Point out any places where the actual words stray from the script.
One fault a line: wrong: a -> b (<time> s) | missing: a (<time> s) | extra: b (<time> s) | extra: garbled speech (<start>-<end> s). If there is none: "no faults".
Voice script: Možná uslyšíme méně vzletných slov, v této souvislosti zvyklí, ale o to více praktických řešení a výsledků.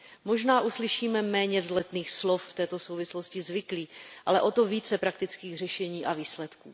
no faults